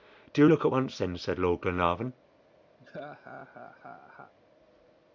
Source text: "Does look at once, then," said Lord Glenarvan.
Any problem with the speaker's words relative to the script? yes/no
yes